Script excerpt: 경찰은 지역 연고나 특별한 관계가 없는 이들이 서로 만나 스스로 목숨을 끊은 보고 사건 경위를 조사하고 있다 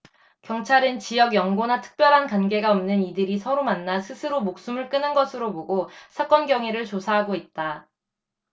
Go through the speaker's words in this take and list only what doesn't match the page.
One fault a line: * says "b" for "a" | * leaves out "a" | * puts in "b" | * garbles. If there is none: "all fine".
* puts in "것으로"